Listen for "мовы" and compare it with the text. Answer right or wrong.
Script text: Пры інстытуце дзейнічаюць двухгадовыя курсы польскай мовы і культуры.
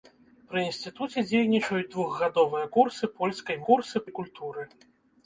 wrong